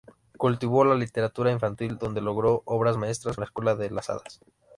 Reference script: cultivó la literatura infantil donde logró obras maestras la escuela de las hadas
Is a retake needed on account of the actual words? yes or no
no